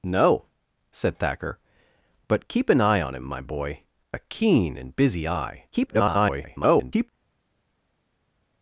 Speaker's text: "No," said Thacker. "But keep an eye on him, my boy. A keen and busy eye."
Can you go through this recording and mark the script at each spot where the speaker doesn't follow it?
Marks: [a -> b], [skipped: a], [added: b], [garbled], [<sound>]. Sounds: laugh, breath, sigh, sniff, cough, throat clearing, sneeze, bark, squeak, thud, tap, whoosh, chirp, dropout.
"No," said Thacker. "But keep an eye on him, my boy. A keen and busy eye." [garbled]